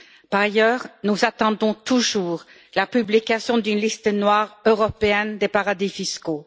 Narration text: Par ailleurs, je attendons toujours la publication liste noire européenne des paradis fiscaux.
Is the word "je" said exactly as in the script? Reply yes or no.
no